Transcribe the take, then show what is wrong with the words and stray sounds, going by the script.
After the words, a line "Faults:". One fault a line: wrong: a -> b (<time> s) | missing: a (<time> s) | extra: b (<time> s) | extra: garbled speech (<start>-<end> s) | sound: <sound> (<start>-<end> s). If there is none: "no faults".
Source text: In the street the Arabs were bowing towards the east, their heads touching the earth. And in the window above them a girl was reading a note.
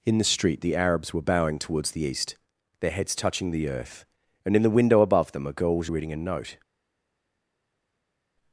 In the street the Arabs were bowing towards the east, their heads touching the earth. And in the window above them a girl was reading a note.
Faults:
no faults